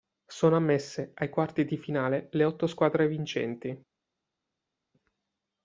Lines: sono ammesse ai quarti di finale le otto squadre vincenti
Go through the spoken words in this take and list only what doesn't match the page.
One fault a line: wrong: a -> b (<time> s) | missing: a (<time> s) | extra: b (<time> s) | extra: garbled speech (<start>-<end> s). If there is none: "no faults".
no faults